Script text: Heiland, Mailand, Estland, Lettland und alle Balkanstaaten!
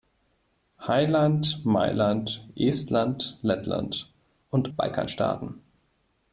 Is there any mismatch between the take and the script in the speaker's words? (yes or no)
yes